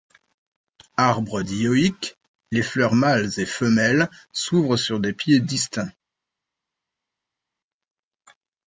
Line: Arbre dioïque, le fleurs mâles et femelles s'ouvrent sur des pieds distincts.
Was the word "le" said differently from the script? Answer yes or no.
yes